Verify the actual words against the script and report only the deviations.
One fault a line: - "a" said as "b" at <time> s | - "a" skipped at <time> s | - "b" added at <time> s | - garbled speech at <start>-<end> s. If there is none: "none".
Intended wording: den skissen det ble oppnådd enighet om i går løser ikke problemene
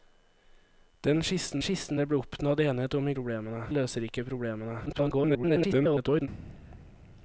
- "skissen" added at 1.6 s
- "går" said as "problemene" at 3.1 s
- garbled speech at 4.9-6.3 s